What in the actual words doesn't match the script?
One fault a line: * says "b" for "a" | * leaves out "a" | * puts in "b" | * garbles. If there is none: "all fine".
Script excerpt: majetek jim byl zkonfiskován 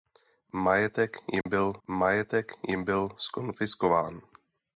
* puts in "majetek jim byl"